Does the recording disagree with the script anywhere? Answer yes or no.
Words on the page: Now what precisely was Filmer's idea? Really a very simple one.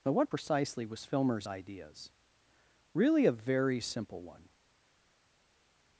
yes